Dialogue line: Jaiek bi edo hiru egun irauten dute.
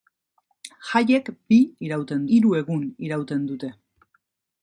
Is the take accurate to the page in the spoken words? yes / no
no